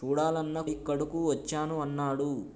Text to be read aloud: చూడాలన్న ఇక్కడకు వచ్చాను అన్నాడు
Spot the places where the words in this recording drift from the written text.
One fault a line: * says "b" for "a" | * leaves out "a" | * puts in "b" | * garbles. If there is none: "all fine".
all fine